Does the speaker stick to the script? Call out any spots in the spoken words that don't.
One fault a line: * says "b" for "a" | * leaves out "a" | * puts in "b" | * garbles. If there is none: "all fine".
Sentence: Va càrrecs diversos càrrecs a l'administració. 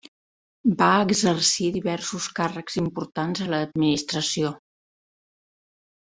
* says "exercir" for "càrrecs"
* puts in "importants"